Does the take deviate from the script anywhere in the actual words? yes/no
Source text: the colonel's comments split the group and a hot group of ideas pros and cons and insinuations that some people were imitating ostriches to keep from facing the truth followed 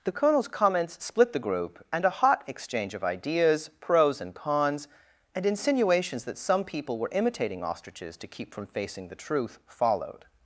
yes